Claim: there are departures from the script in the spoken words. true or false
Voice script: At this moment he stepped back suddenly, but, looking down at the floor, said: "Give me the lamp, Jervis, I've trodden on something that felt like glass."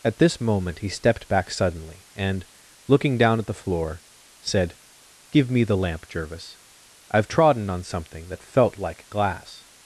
true